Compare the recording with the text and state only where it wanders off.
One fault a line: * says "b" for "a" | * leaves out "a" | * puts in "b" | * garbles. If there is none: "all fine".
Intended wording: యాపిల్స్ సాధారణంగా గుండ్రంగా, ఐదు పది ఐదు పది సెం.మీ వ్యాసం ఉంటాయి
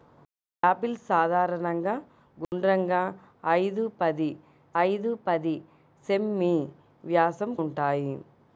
all fine